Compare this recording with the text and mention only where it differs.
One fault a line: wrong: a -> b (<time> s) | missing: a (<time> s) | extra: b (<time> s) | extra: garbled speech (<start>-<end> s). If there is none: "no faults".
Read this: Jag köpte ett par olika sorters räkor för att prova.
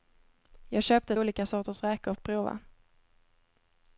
missing: ett par (1.1 s)
missing: för (2.1 s)